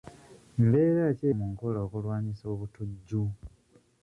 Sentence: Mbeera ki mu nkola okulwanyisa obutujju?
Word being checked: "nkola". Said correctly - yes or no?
yes